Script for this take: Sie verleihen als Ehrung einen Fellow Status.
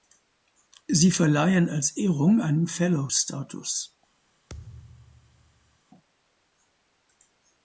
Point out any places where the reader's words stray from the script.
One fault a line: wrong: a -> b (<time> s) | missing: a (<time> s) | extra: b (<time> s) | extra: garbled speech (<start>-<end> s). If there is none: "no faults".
no faults